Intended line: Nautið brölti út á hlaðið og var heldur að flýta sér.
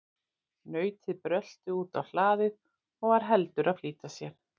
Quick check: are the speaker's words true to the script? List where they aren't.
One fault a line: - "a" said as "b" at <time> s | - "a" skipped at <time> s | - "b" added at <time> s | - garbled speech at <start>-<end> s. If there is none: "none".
none